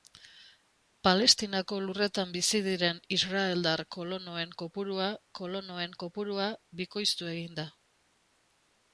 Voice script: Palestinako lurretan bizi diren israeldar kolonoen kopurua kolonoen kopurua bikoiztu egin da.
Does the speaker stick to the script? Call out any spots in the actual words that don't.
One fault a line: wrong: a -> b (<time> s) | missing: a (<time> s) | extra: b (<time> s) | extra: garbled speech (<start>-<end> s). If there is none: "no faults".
no faults